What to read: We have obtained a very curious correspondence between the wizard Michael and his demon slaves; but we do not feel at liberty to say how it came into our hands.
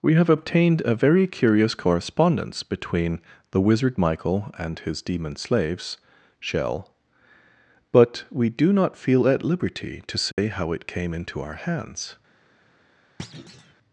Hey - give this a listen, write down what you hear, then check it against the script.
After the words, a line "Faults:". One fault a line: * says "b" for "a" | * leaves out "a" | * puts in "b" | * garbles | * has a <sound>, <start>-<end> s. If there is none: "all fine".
We have obtained a very curious correspondence between the wizard Michael and his demon slaves; shell but we do not feel at liberty to say how it came into our hands.
Faults:
* puts in "shell"
* has a dropout, 10.3-10.4 s
* has a thud, 13.2-13.7 s